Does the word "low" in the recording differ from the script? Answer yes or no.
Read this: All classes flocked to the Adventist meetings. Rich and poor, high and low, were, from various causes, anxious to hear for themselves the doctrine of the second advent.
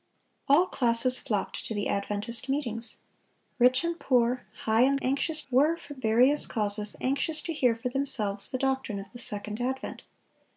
yes